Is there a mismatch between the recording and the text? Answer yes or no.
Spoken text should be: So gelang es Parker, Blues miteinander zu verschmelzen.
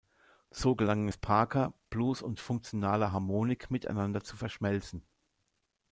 yes